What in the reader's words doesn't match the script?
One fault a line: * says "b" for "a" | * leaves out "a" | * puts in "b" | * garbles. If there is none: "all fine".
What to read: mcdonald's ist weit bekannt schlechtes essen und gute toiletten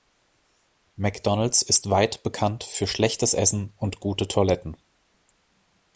* puts in "für"